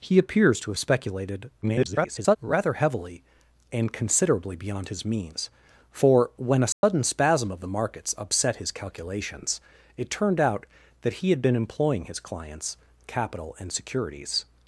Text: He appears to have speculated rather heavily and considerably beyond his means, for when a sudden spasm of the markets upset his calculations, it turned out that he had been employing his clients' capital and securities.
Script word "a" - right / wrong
right